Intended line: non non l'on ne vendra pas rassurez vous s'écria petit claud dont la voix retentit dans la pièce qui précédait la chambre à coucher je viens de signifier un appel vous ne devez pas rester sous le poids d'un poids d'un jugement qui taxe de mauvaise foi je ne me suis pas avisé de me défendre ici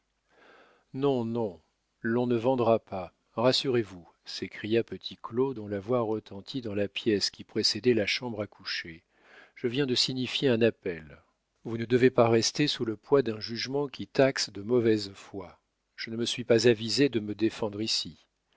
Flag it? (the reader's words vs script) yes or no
yes